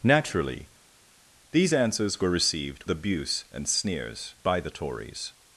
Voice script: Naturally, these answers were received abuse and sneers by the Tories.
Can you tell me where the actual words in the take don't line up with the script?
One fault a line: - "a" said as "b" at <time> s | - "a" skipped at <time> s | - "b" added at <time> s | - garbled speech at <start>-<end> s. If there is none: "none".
none